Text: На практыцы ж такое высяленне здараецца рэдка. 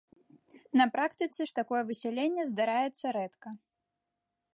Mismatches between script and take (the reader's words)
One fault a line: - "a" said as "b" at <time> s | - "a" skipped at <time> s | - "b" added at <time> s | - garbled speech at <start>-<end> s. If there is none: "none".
none